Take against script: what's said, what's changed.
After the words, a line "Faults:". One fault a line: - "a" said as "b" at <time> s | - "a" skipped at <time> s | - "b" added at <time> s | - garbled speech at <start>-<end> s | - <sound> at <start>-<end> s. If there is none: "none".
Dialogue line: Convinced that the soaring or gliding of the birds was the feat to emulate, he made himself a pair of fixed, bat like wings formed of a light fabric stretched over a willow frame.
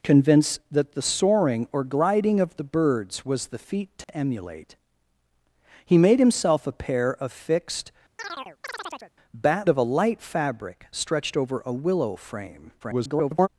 Convinced that the soaring or gliding of the birds was the feat to emulate, he made himself a pair of fixed, bat of a light fabric stretched over a willow frame. [garbled]
Faults:
- dropout at 4.0-4.1 s
- chirp at 8.2-9.1 s
- "like wings formed" skipped at 9.7 s
- garbled speech at 12.8-13.5 s